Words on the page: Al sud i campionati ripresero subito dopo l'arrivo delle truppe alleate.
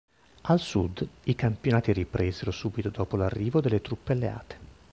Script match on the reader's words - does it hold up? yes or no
yes